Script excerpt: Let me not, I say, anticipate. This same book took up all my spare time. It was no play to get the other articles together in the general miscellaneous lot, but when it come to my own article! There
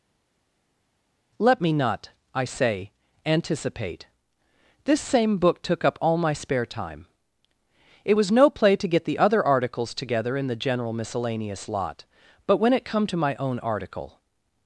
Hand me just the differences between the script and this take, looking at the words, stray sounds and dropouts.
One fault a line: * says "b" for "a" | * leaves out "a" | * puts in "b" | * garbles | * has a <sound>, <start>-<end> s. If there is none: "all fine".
* leaves out "There"